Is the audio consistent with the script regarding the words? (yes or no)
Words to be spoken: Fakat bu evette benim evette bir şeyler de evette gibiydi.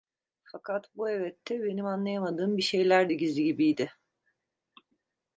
no